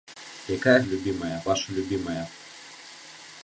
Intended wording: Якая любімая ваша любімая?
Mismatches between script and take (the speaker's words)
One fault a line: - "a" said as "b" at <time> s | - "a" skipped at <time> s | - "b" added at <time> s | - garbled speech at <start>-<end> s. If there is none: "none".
none